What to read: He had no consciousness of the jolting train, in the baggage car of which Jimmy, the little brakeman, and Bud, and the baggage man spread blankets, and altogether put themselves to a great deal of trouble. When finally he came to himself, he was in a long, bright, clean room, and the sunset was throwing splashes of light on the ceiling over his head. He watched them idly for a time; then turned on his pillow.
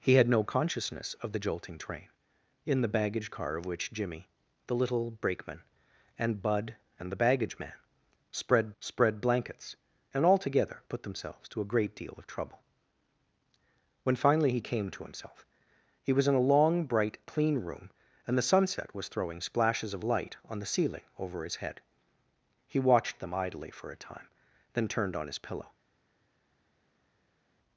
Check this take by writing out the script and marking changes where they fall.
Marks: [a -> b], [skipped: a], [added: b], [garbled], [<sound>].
He had no consciousness of the jolting train, in the baggage car of which Jimmy, the little brakeman, and Bud, and the baggage man spread [added: spread] blankets, and altogether put themselves to a great deal of trouble. When finally he came to himself, he was in a long, bright, clean room, and the sunset was throwing splashes of light on the ceiling over his head. He watched them idly for a time; then turned on his pillow.